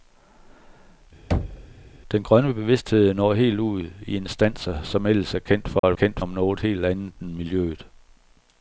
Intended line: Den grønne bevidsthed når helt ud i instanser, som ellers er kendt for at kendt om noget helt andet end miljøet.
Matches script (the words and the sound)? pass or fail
fail